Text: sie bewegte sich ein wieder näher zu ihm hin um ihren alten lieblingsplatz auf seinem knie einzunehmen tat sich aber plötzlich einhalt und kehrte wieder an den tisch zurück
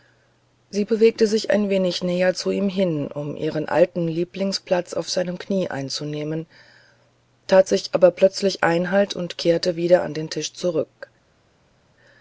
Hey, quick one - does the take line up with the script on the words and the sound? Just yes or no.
no